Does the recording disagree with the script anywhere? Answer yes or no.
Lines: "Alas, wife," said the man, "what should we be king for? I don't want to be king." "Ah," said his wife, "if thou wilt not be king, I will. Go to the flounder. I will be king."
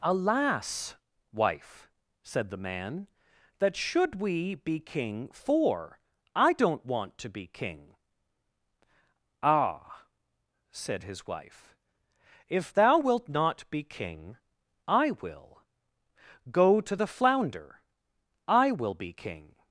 yes